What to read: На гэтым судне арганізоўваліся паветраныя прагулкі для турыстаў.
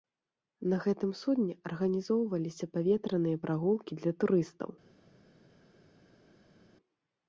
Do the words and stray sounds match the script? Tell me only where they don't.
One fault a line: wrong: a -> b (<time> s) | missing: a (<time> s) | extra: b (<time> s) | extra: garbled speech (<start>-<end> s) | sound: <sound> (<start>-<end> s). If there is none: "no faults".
no faults